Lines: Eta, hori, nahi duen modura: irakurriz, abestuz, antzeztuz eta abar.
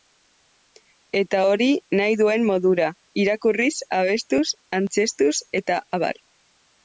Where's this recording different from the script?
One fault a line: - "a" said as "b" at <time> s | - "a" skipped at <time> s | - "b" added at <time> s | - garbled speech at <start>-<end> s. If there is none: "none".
none